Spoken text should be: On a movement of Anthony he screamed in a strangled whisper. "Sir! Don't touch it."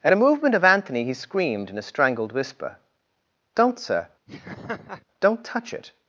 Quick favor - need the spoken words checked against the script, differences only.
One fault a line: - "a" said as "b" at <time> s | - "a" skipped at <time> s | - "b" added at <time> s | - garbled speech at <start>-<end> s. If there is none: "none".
- "On" said as "At" at 0.0 s
- "Don't" added at 3.6 s